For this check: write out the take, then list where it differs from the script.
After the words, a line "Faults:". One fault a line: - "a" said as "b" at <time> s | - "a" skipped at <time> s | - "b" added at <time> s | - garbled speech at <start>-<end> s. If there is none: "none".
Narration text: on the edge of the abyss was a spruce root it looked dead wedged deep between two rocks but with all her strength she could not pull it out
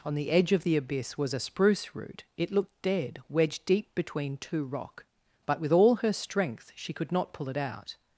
on the edge of the abyss was a spruce root it looked dead wedged deep between two rock but with all her strength she could not pull it out
Faults:
- "rocks" said as "rock" at 4.6 s